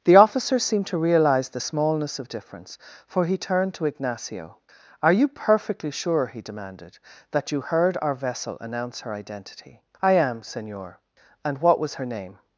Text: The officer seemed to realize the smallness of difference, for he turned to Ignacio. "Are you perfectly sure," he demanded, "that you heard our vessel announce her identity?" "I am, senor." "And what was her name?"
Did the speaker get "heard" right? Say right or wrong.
right